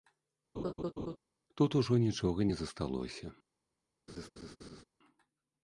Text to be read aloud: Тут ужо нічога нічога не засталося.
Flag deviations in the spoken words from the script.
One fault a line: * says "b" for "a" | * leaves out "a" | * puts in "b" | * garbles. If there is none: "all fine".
* leaves out "нічога"